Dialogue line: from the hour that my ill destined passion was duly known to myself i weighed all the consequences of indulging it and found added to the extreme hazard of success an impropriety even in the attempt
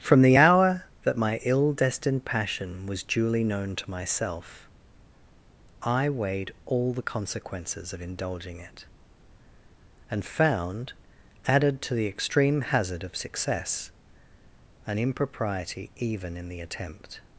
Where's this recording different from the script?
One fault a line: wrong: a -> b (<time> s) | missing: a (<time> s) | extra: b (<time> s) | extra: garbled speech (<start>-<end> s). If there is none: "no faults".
no faults